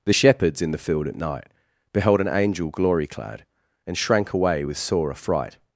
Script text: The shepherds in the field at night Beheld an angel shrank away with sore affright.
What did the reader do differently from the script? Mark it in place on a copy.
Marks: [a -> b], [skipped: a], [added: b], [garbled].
The shepherds in the field at night Beheld an angel [added: glory clad And] shrank away with sore affright.